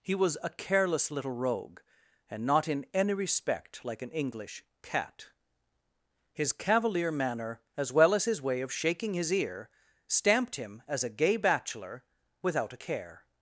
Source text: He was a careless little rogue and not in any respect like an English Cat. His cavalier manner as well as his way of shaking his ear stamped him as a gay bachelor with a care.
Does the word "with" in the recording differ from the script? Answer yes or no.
yes